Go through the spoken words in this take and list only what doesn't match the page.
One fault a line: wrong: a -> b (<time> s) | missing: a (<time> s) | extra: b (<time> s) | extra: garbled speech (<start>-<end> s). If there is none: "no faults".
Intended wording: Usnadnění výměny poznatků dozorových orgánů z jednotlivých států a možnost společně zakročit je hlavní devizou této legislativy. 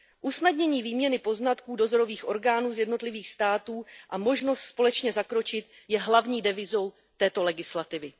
no faults